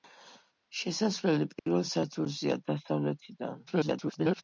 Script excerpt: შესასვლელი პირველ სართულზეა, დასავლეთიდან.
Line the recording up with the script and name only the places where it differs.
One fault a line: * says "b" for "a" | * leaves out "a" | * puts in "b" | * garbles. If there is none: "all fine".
* garbles